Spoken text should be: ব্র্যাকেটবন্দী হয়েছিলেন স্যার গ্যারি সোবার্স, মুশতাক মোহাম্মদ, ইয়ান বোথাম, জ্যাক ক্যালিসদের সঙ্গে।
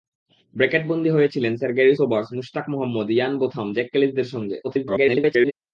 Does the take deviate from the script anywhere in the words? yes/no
yes